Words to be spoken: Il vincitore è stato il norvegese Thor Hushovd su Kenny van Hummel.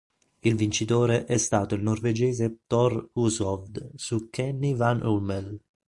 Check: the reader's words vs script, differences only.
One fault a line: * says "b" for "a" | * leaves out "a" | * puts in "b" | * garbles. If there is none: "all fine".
all fine